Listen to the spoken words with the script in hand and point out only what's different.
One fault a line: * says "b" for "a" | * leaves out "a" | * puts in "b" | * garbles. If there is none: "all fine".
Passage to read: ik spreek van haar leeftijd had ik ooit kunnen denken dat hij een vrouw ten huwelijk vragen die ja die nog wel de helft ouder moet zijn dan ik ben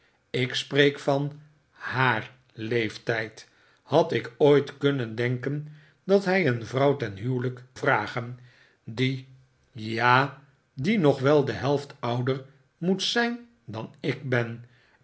all fine